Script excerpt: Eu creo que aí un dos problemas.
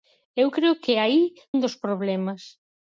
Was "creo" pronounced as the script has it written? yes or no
yes